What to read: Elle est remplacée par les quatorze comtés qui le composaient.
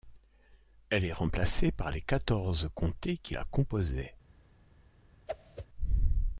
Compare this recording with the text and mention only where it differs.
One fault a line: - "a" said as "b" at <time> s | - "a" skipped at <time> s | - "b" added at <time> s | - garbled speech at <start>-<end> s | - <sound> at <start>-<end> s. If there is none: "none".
- "le" said as "la" at 3.3 s
- whoosh at 5.3-5.7 s